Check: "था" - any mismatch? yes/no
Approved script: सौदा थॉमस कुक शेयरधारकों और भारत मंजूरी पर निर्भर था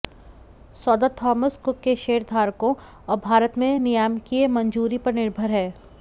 yes